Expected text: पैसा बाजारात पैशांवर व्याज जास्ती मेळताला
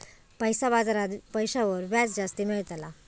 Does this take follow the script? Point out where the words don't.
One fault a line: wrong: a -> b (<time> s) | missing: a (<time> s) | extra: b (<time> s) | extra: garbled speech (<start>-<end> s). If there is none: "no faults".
no faults